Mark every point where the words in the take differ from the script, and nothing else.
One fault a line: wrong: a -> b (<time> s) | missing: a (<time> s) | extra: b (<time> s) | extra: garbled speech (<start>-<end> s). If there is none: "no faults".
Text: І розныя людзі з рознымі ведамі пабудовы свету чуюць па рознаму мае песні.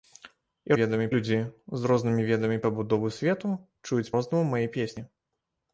wrong: розныя -> ведамі (0.8 s)
missing: па (4.1 s)